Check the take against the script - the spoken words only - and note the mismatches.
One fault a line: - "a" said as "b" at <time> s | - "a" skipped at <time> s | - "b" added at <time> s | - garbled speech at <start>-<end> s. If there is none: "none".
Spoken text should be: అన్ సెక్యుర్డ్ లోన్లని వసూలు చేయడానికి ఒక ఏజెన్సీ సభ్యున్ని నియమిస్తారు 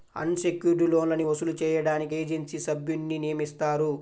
- "ఒక" skipped at 2.1 s